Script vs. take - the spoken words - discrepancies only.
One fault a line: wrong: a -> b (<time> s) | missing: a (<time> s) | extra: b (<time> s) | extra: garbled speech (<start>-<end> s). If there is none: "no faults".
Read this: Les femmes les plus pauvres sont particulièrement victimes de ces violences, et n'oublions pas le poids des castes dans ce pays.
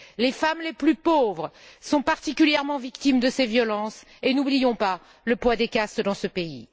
no faults